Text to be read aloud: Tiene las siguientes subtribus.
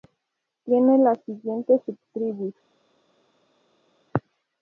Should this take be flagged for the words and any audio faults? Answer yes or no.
no